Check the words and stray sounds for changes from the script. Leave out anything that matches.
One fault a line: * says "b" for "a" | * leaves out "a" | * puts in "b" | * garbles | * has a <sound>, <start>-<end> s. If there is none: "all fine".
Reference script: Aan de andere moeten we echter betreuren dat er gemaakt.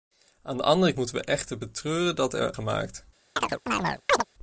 * has a chirp, 3.4-4.2 s